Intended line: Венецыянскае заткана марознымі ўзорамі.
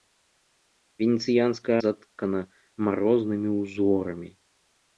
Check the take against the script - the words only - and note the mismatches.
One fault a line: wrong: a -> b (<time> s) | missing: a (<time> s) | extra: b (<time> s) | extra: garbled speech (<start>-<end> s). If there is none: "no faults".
no faults